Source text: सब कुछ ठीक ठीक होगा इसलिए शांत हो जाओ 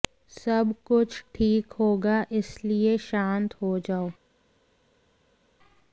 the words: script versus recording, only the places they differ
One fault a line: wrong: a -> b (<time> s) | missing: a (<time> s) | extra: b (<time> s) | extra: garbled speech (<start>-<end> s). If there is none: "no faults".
missing: ठीक (1.7 s)